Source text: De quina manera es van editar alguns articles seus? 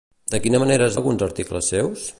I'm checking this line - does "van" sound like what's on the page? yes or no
no